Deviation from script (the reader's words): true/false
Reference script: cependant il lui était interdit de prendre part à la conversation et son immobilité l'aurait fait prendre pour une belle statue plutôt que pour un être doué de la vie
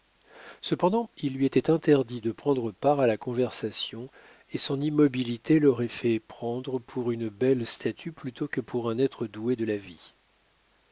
false